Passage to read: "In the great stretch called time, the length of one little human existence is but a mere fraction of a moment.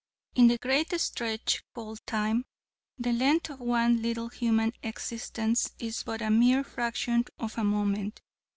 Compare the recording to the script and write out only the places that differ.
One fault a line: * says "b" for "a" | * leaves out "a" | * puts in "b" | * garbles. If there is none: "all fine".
all fine